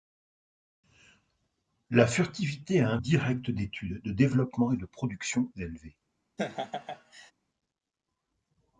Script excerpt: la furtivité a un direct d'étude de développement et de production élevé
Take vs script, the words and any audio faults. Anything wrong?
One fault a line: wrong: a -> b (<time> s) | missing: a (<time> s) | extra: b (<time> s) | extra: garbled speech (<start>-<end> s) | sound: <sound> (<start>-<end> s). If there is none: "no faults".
sound: laugh (6.4-7.3 s)